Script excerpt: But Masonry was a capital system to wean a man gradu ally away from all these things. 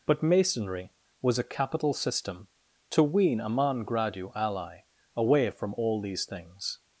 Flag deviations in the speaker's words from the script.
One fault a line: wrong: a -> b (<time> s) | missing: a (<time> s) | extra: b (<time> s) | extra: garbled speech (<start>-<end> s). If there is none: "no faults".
no faults